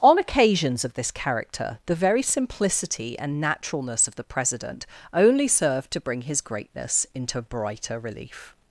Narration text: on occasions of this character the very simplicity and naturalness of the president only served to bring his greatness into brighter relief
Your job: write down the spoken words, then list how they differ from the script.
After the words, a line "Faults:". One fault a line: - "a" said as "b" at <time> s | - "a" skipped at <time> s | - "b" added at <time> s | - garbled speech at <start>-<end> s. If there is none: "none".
on occasions of this character the very simplicity and naturalness of the president only served to bring his greatness into brighter relief
Faults:
none